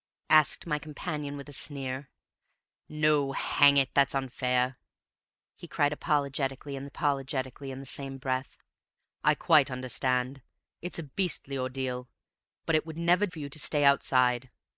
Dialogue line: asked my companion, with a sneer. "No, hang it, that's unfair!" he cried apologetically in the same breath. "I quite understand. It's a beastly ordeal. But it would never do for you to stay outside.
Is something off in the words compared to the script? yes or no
yes